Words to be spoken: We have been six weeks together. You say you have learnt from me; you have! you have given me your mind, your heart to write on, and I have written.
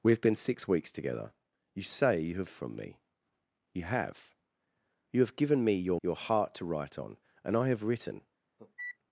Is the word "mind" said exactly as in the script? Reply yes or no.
no